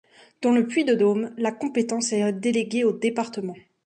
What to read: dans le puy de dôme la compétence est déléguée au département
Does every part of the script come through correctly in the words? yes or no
yes